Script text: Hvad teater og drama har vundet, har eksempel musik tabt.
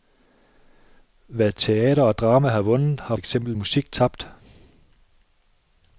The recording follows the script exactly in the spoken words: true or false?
true